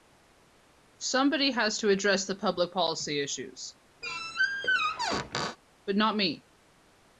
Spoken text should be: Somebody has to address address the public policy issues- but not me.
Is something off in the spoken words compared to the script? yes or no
yes